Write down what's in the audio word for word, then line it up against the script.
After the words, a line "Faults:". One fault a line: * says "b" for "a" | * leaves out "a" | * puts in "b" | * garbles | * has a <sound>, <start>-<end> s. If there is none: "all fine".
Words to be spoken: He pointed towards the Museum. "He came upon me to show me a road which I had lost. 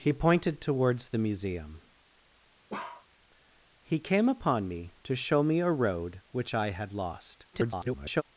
He pointed towards the Museum. "He came upon me to show me a road which I had lost. [garbled]
Faults:
* has a bark, 2.7-3.1 s
* garbles